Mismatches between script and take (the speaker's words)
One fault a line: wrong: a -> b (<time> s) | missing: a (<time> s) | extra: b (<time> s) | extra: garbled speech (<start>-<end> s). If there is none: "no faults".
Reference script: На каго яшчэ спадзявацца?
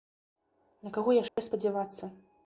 no faults